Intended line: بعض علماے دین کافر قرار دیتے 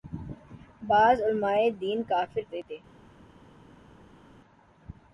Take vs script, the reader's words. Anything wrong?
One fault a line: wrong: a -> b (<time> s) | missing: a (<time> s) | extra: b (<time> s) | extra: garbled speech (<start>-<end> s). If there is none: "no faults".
missing: قرار (2.4 s)